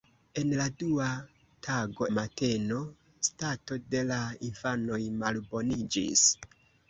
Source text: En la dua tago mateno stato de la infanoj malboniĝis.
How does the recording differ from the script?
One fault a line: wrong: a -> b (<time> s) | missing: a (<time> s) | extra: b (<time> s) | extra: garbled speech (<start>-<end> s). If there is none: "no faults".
no faults